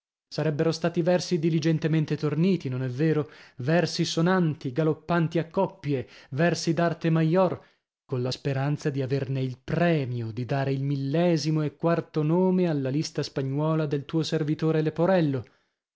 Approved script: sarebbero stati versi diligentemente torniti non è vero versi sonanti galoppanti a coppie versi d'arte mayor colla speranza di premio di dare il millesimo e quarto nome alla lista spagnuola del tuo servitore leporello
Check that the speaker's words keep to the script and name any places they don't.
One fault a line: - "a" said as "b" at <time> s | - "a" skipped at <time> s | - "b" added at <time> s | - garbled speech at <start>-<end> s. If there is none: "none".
- "averne il" added at 9.0 s